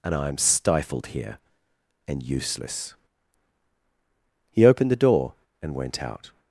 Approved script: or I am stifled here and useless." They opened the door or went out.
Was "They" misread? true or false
true